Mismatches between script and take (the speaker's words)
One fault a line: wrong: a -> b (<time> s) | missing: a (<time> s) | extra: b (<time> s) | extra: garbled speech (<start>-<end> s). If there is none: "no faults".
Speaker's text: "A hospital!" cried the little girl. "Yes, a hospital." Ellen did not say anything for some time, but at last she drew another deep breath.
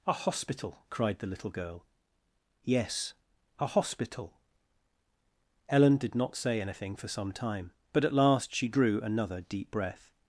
no faults